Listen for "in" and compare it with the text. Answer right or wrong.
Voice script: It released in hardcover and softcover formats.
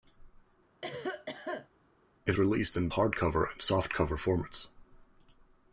right